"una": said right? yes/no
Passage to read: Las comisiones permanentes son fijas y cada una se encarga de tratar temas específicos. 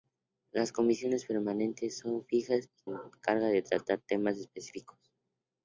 no